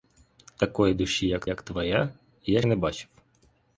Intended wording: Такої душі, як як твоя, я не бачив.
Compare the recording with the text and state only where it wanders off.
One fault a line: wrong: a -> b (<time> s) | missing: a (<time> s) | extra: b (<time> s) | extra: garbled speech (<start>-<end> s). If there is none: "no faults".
no faults